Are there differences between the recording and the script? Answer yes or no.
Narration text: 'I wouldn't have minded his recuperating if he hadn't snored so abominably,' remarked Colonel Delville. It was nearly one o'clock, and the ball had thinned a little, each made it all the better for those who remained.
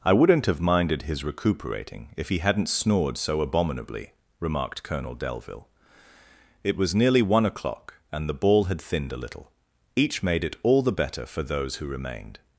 no